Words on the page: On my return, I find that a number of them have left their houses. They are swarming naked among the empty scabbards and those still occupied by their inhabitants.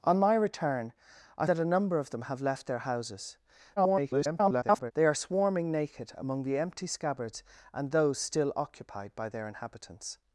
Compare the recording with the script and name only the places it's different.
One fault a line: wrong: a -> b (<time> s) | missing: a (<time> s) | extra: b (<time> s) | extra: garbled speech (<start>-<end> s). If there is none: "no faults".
missing: find (1.4 s)
extra: garbled speech (3.8-4.9 s)